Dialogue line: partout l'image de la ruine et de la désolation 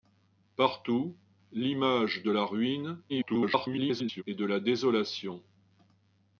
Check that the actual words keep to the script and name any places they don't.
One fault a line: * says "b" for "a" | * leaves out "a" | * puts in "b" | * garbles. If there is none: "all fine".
* garbles